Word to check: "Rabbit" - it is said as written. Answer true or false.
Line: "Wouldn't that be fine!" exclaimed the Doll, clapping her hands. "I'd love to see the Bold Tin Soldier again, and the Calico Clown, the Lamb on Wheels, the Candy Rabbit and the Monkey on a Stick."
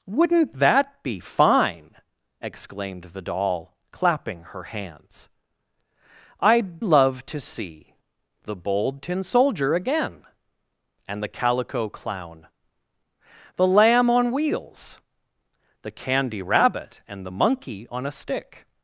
true